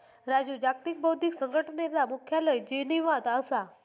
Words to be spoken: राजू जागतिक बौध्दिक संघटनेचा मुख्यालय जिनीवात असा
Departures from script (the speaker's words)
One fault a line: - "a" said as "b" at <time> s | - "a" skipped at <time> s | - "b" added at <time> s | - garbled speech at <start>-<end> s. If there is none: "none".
none